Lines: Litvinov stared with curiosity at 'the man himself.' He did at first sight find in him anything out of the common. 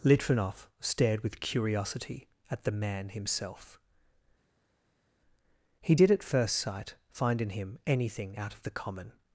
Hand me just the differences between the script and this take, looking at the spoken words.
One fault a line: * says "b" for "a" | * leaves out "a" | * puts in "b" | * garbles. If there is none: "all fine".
all fine